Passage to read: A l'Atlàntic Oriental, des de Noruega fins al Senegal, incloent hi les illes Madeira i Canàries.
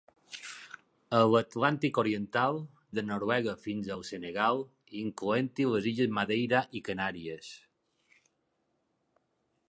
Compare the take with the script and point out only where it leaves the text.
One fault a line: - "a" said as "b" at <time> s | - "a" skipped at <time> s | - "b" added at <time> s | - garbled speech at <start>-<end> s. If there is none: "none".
- "des" skipped at 2.6 s